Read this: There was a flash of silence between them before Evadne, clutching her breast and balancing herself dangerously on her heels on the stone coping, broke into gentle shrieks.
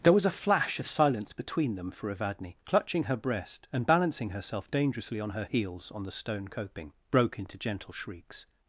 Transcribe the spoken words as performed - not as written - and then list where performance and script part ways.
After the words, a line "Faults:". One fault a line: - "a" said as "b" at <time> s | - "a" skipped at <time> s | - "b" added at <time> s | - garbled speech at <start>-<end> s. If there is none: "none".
There was a flash of silence between them for Evadne, clutching her breast and balancing herself dangerously on her heels on the stone coping, broke into gentle shrieks.
Faults:
- "before" said as "for" at 1.9 s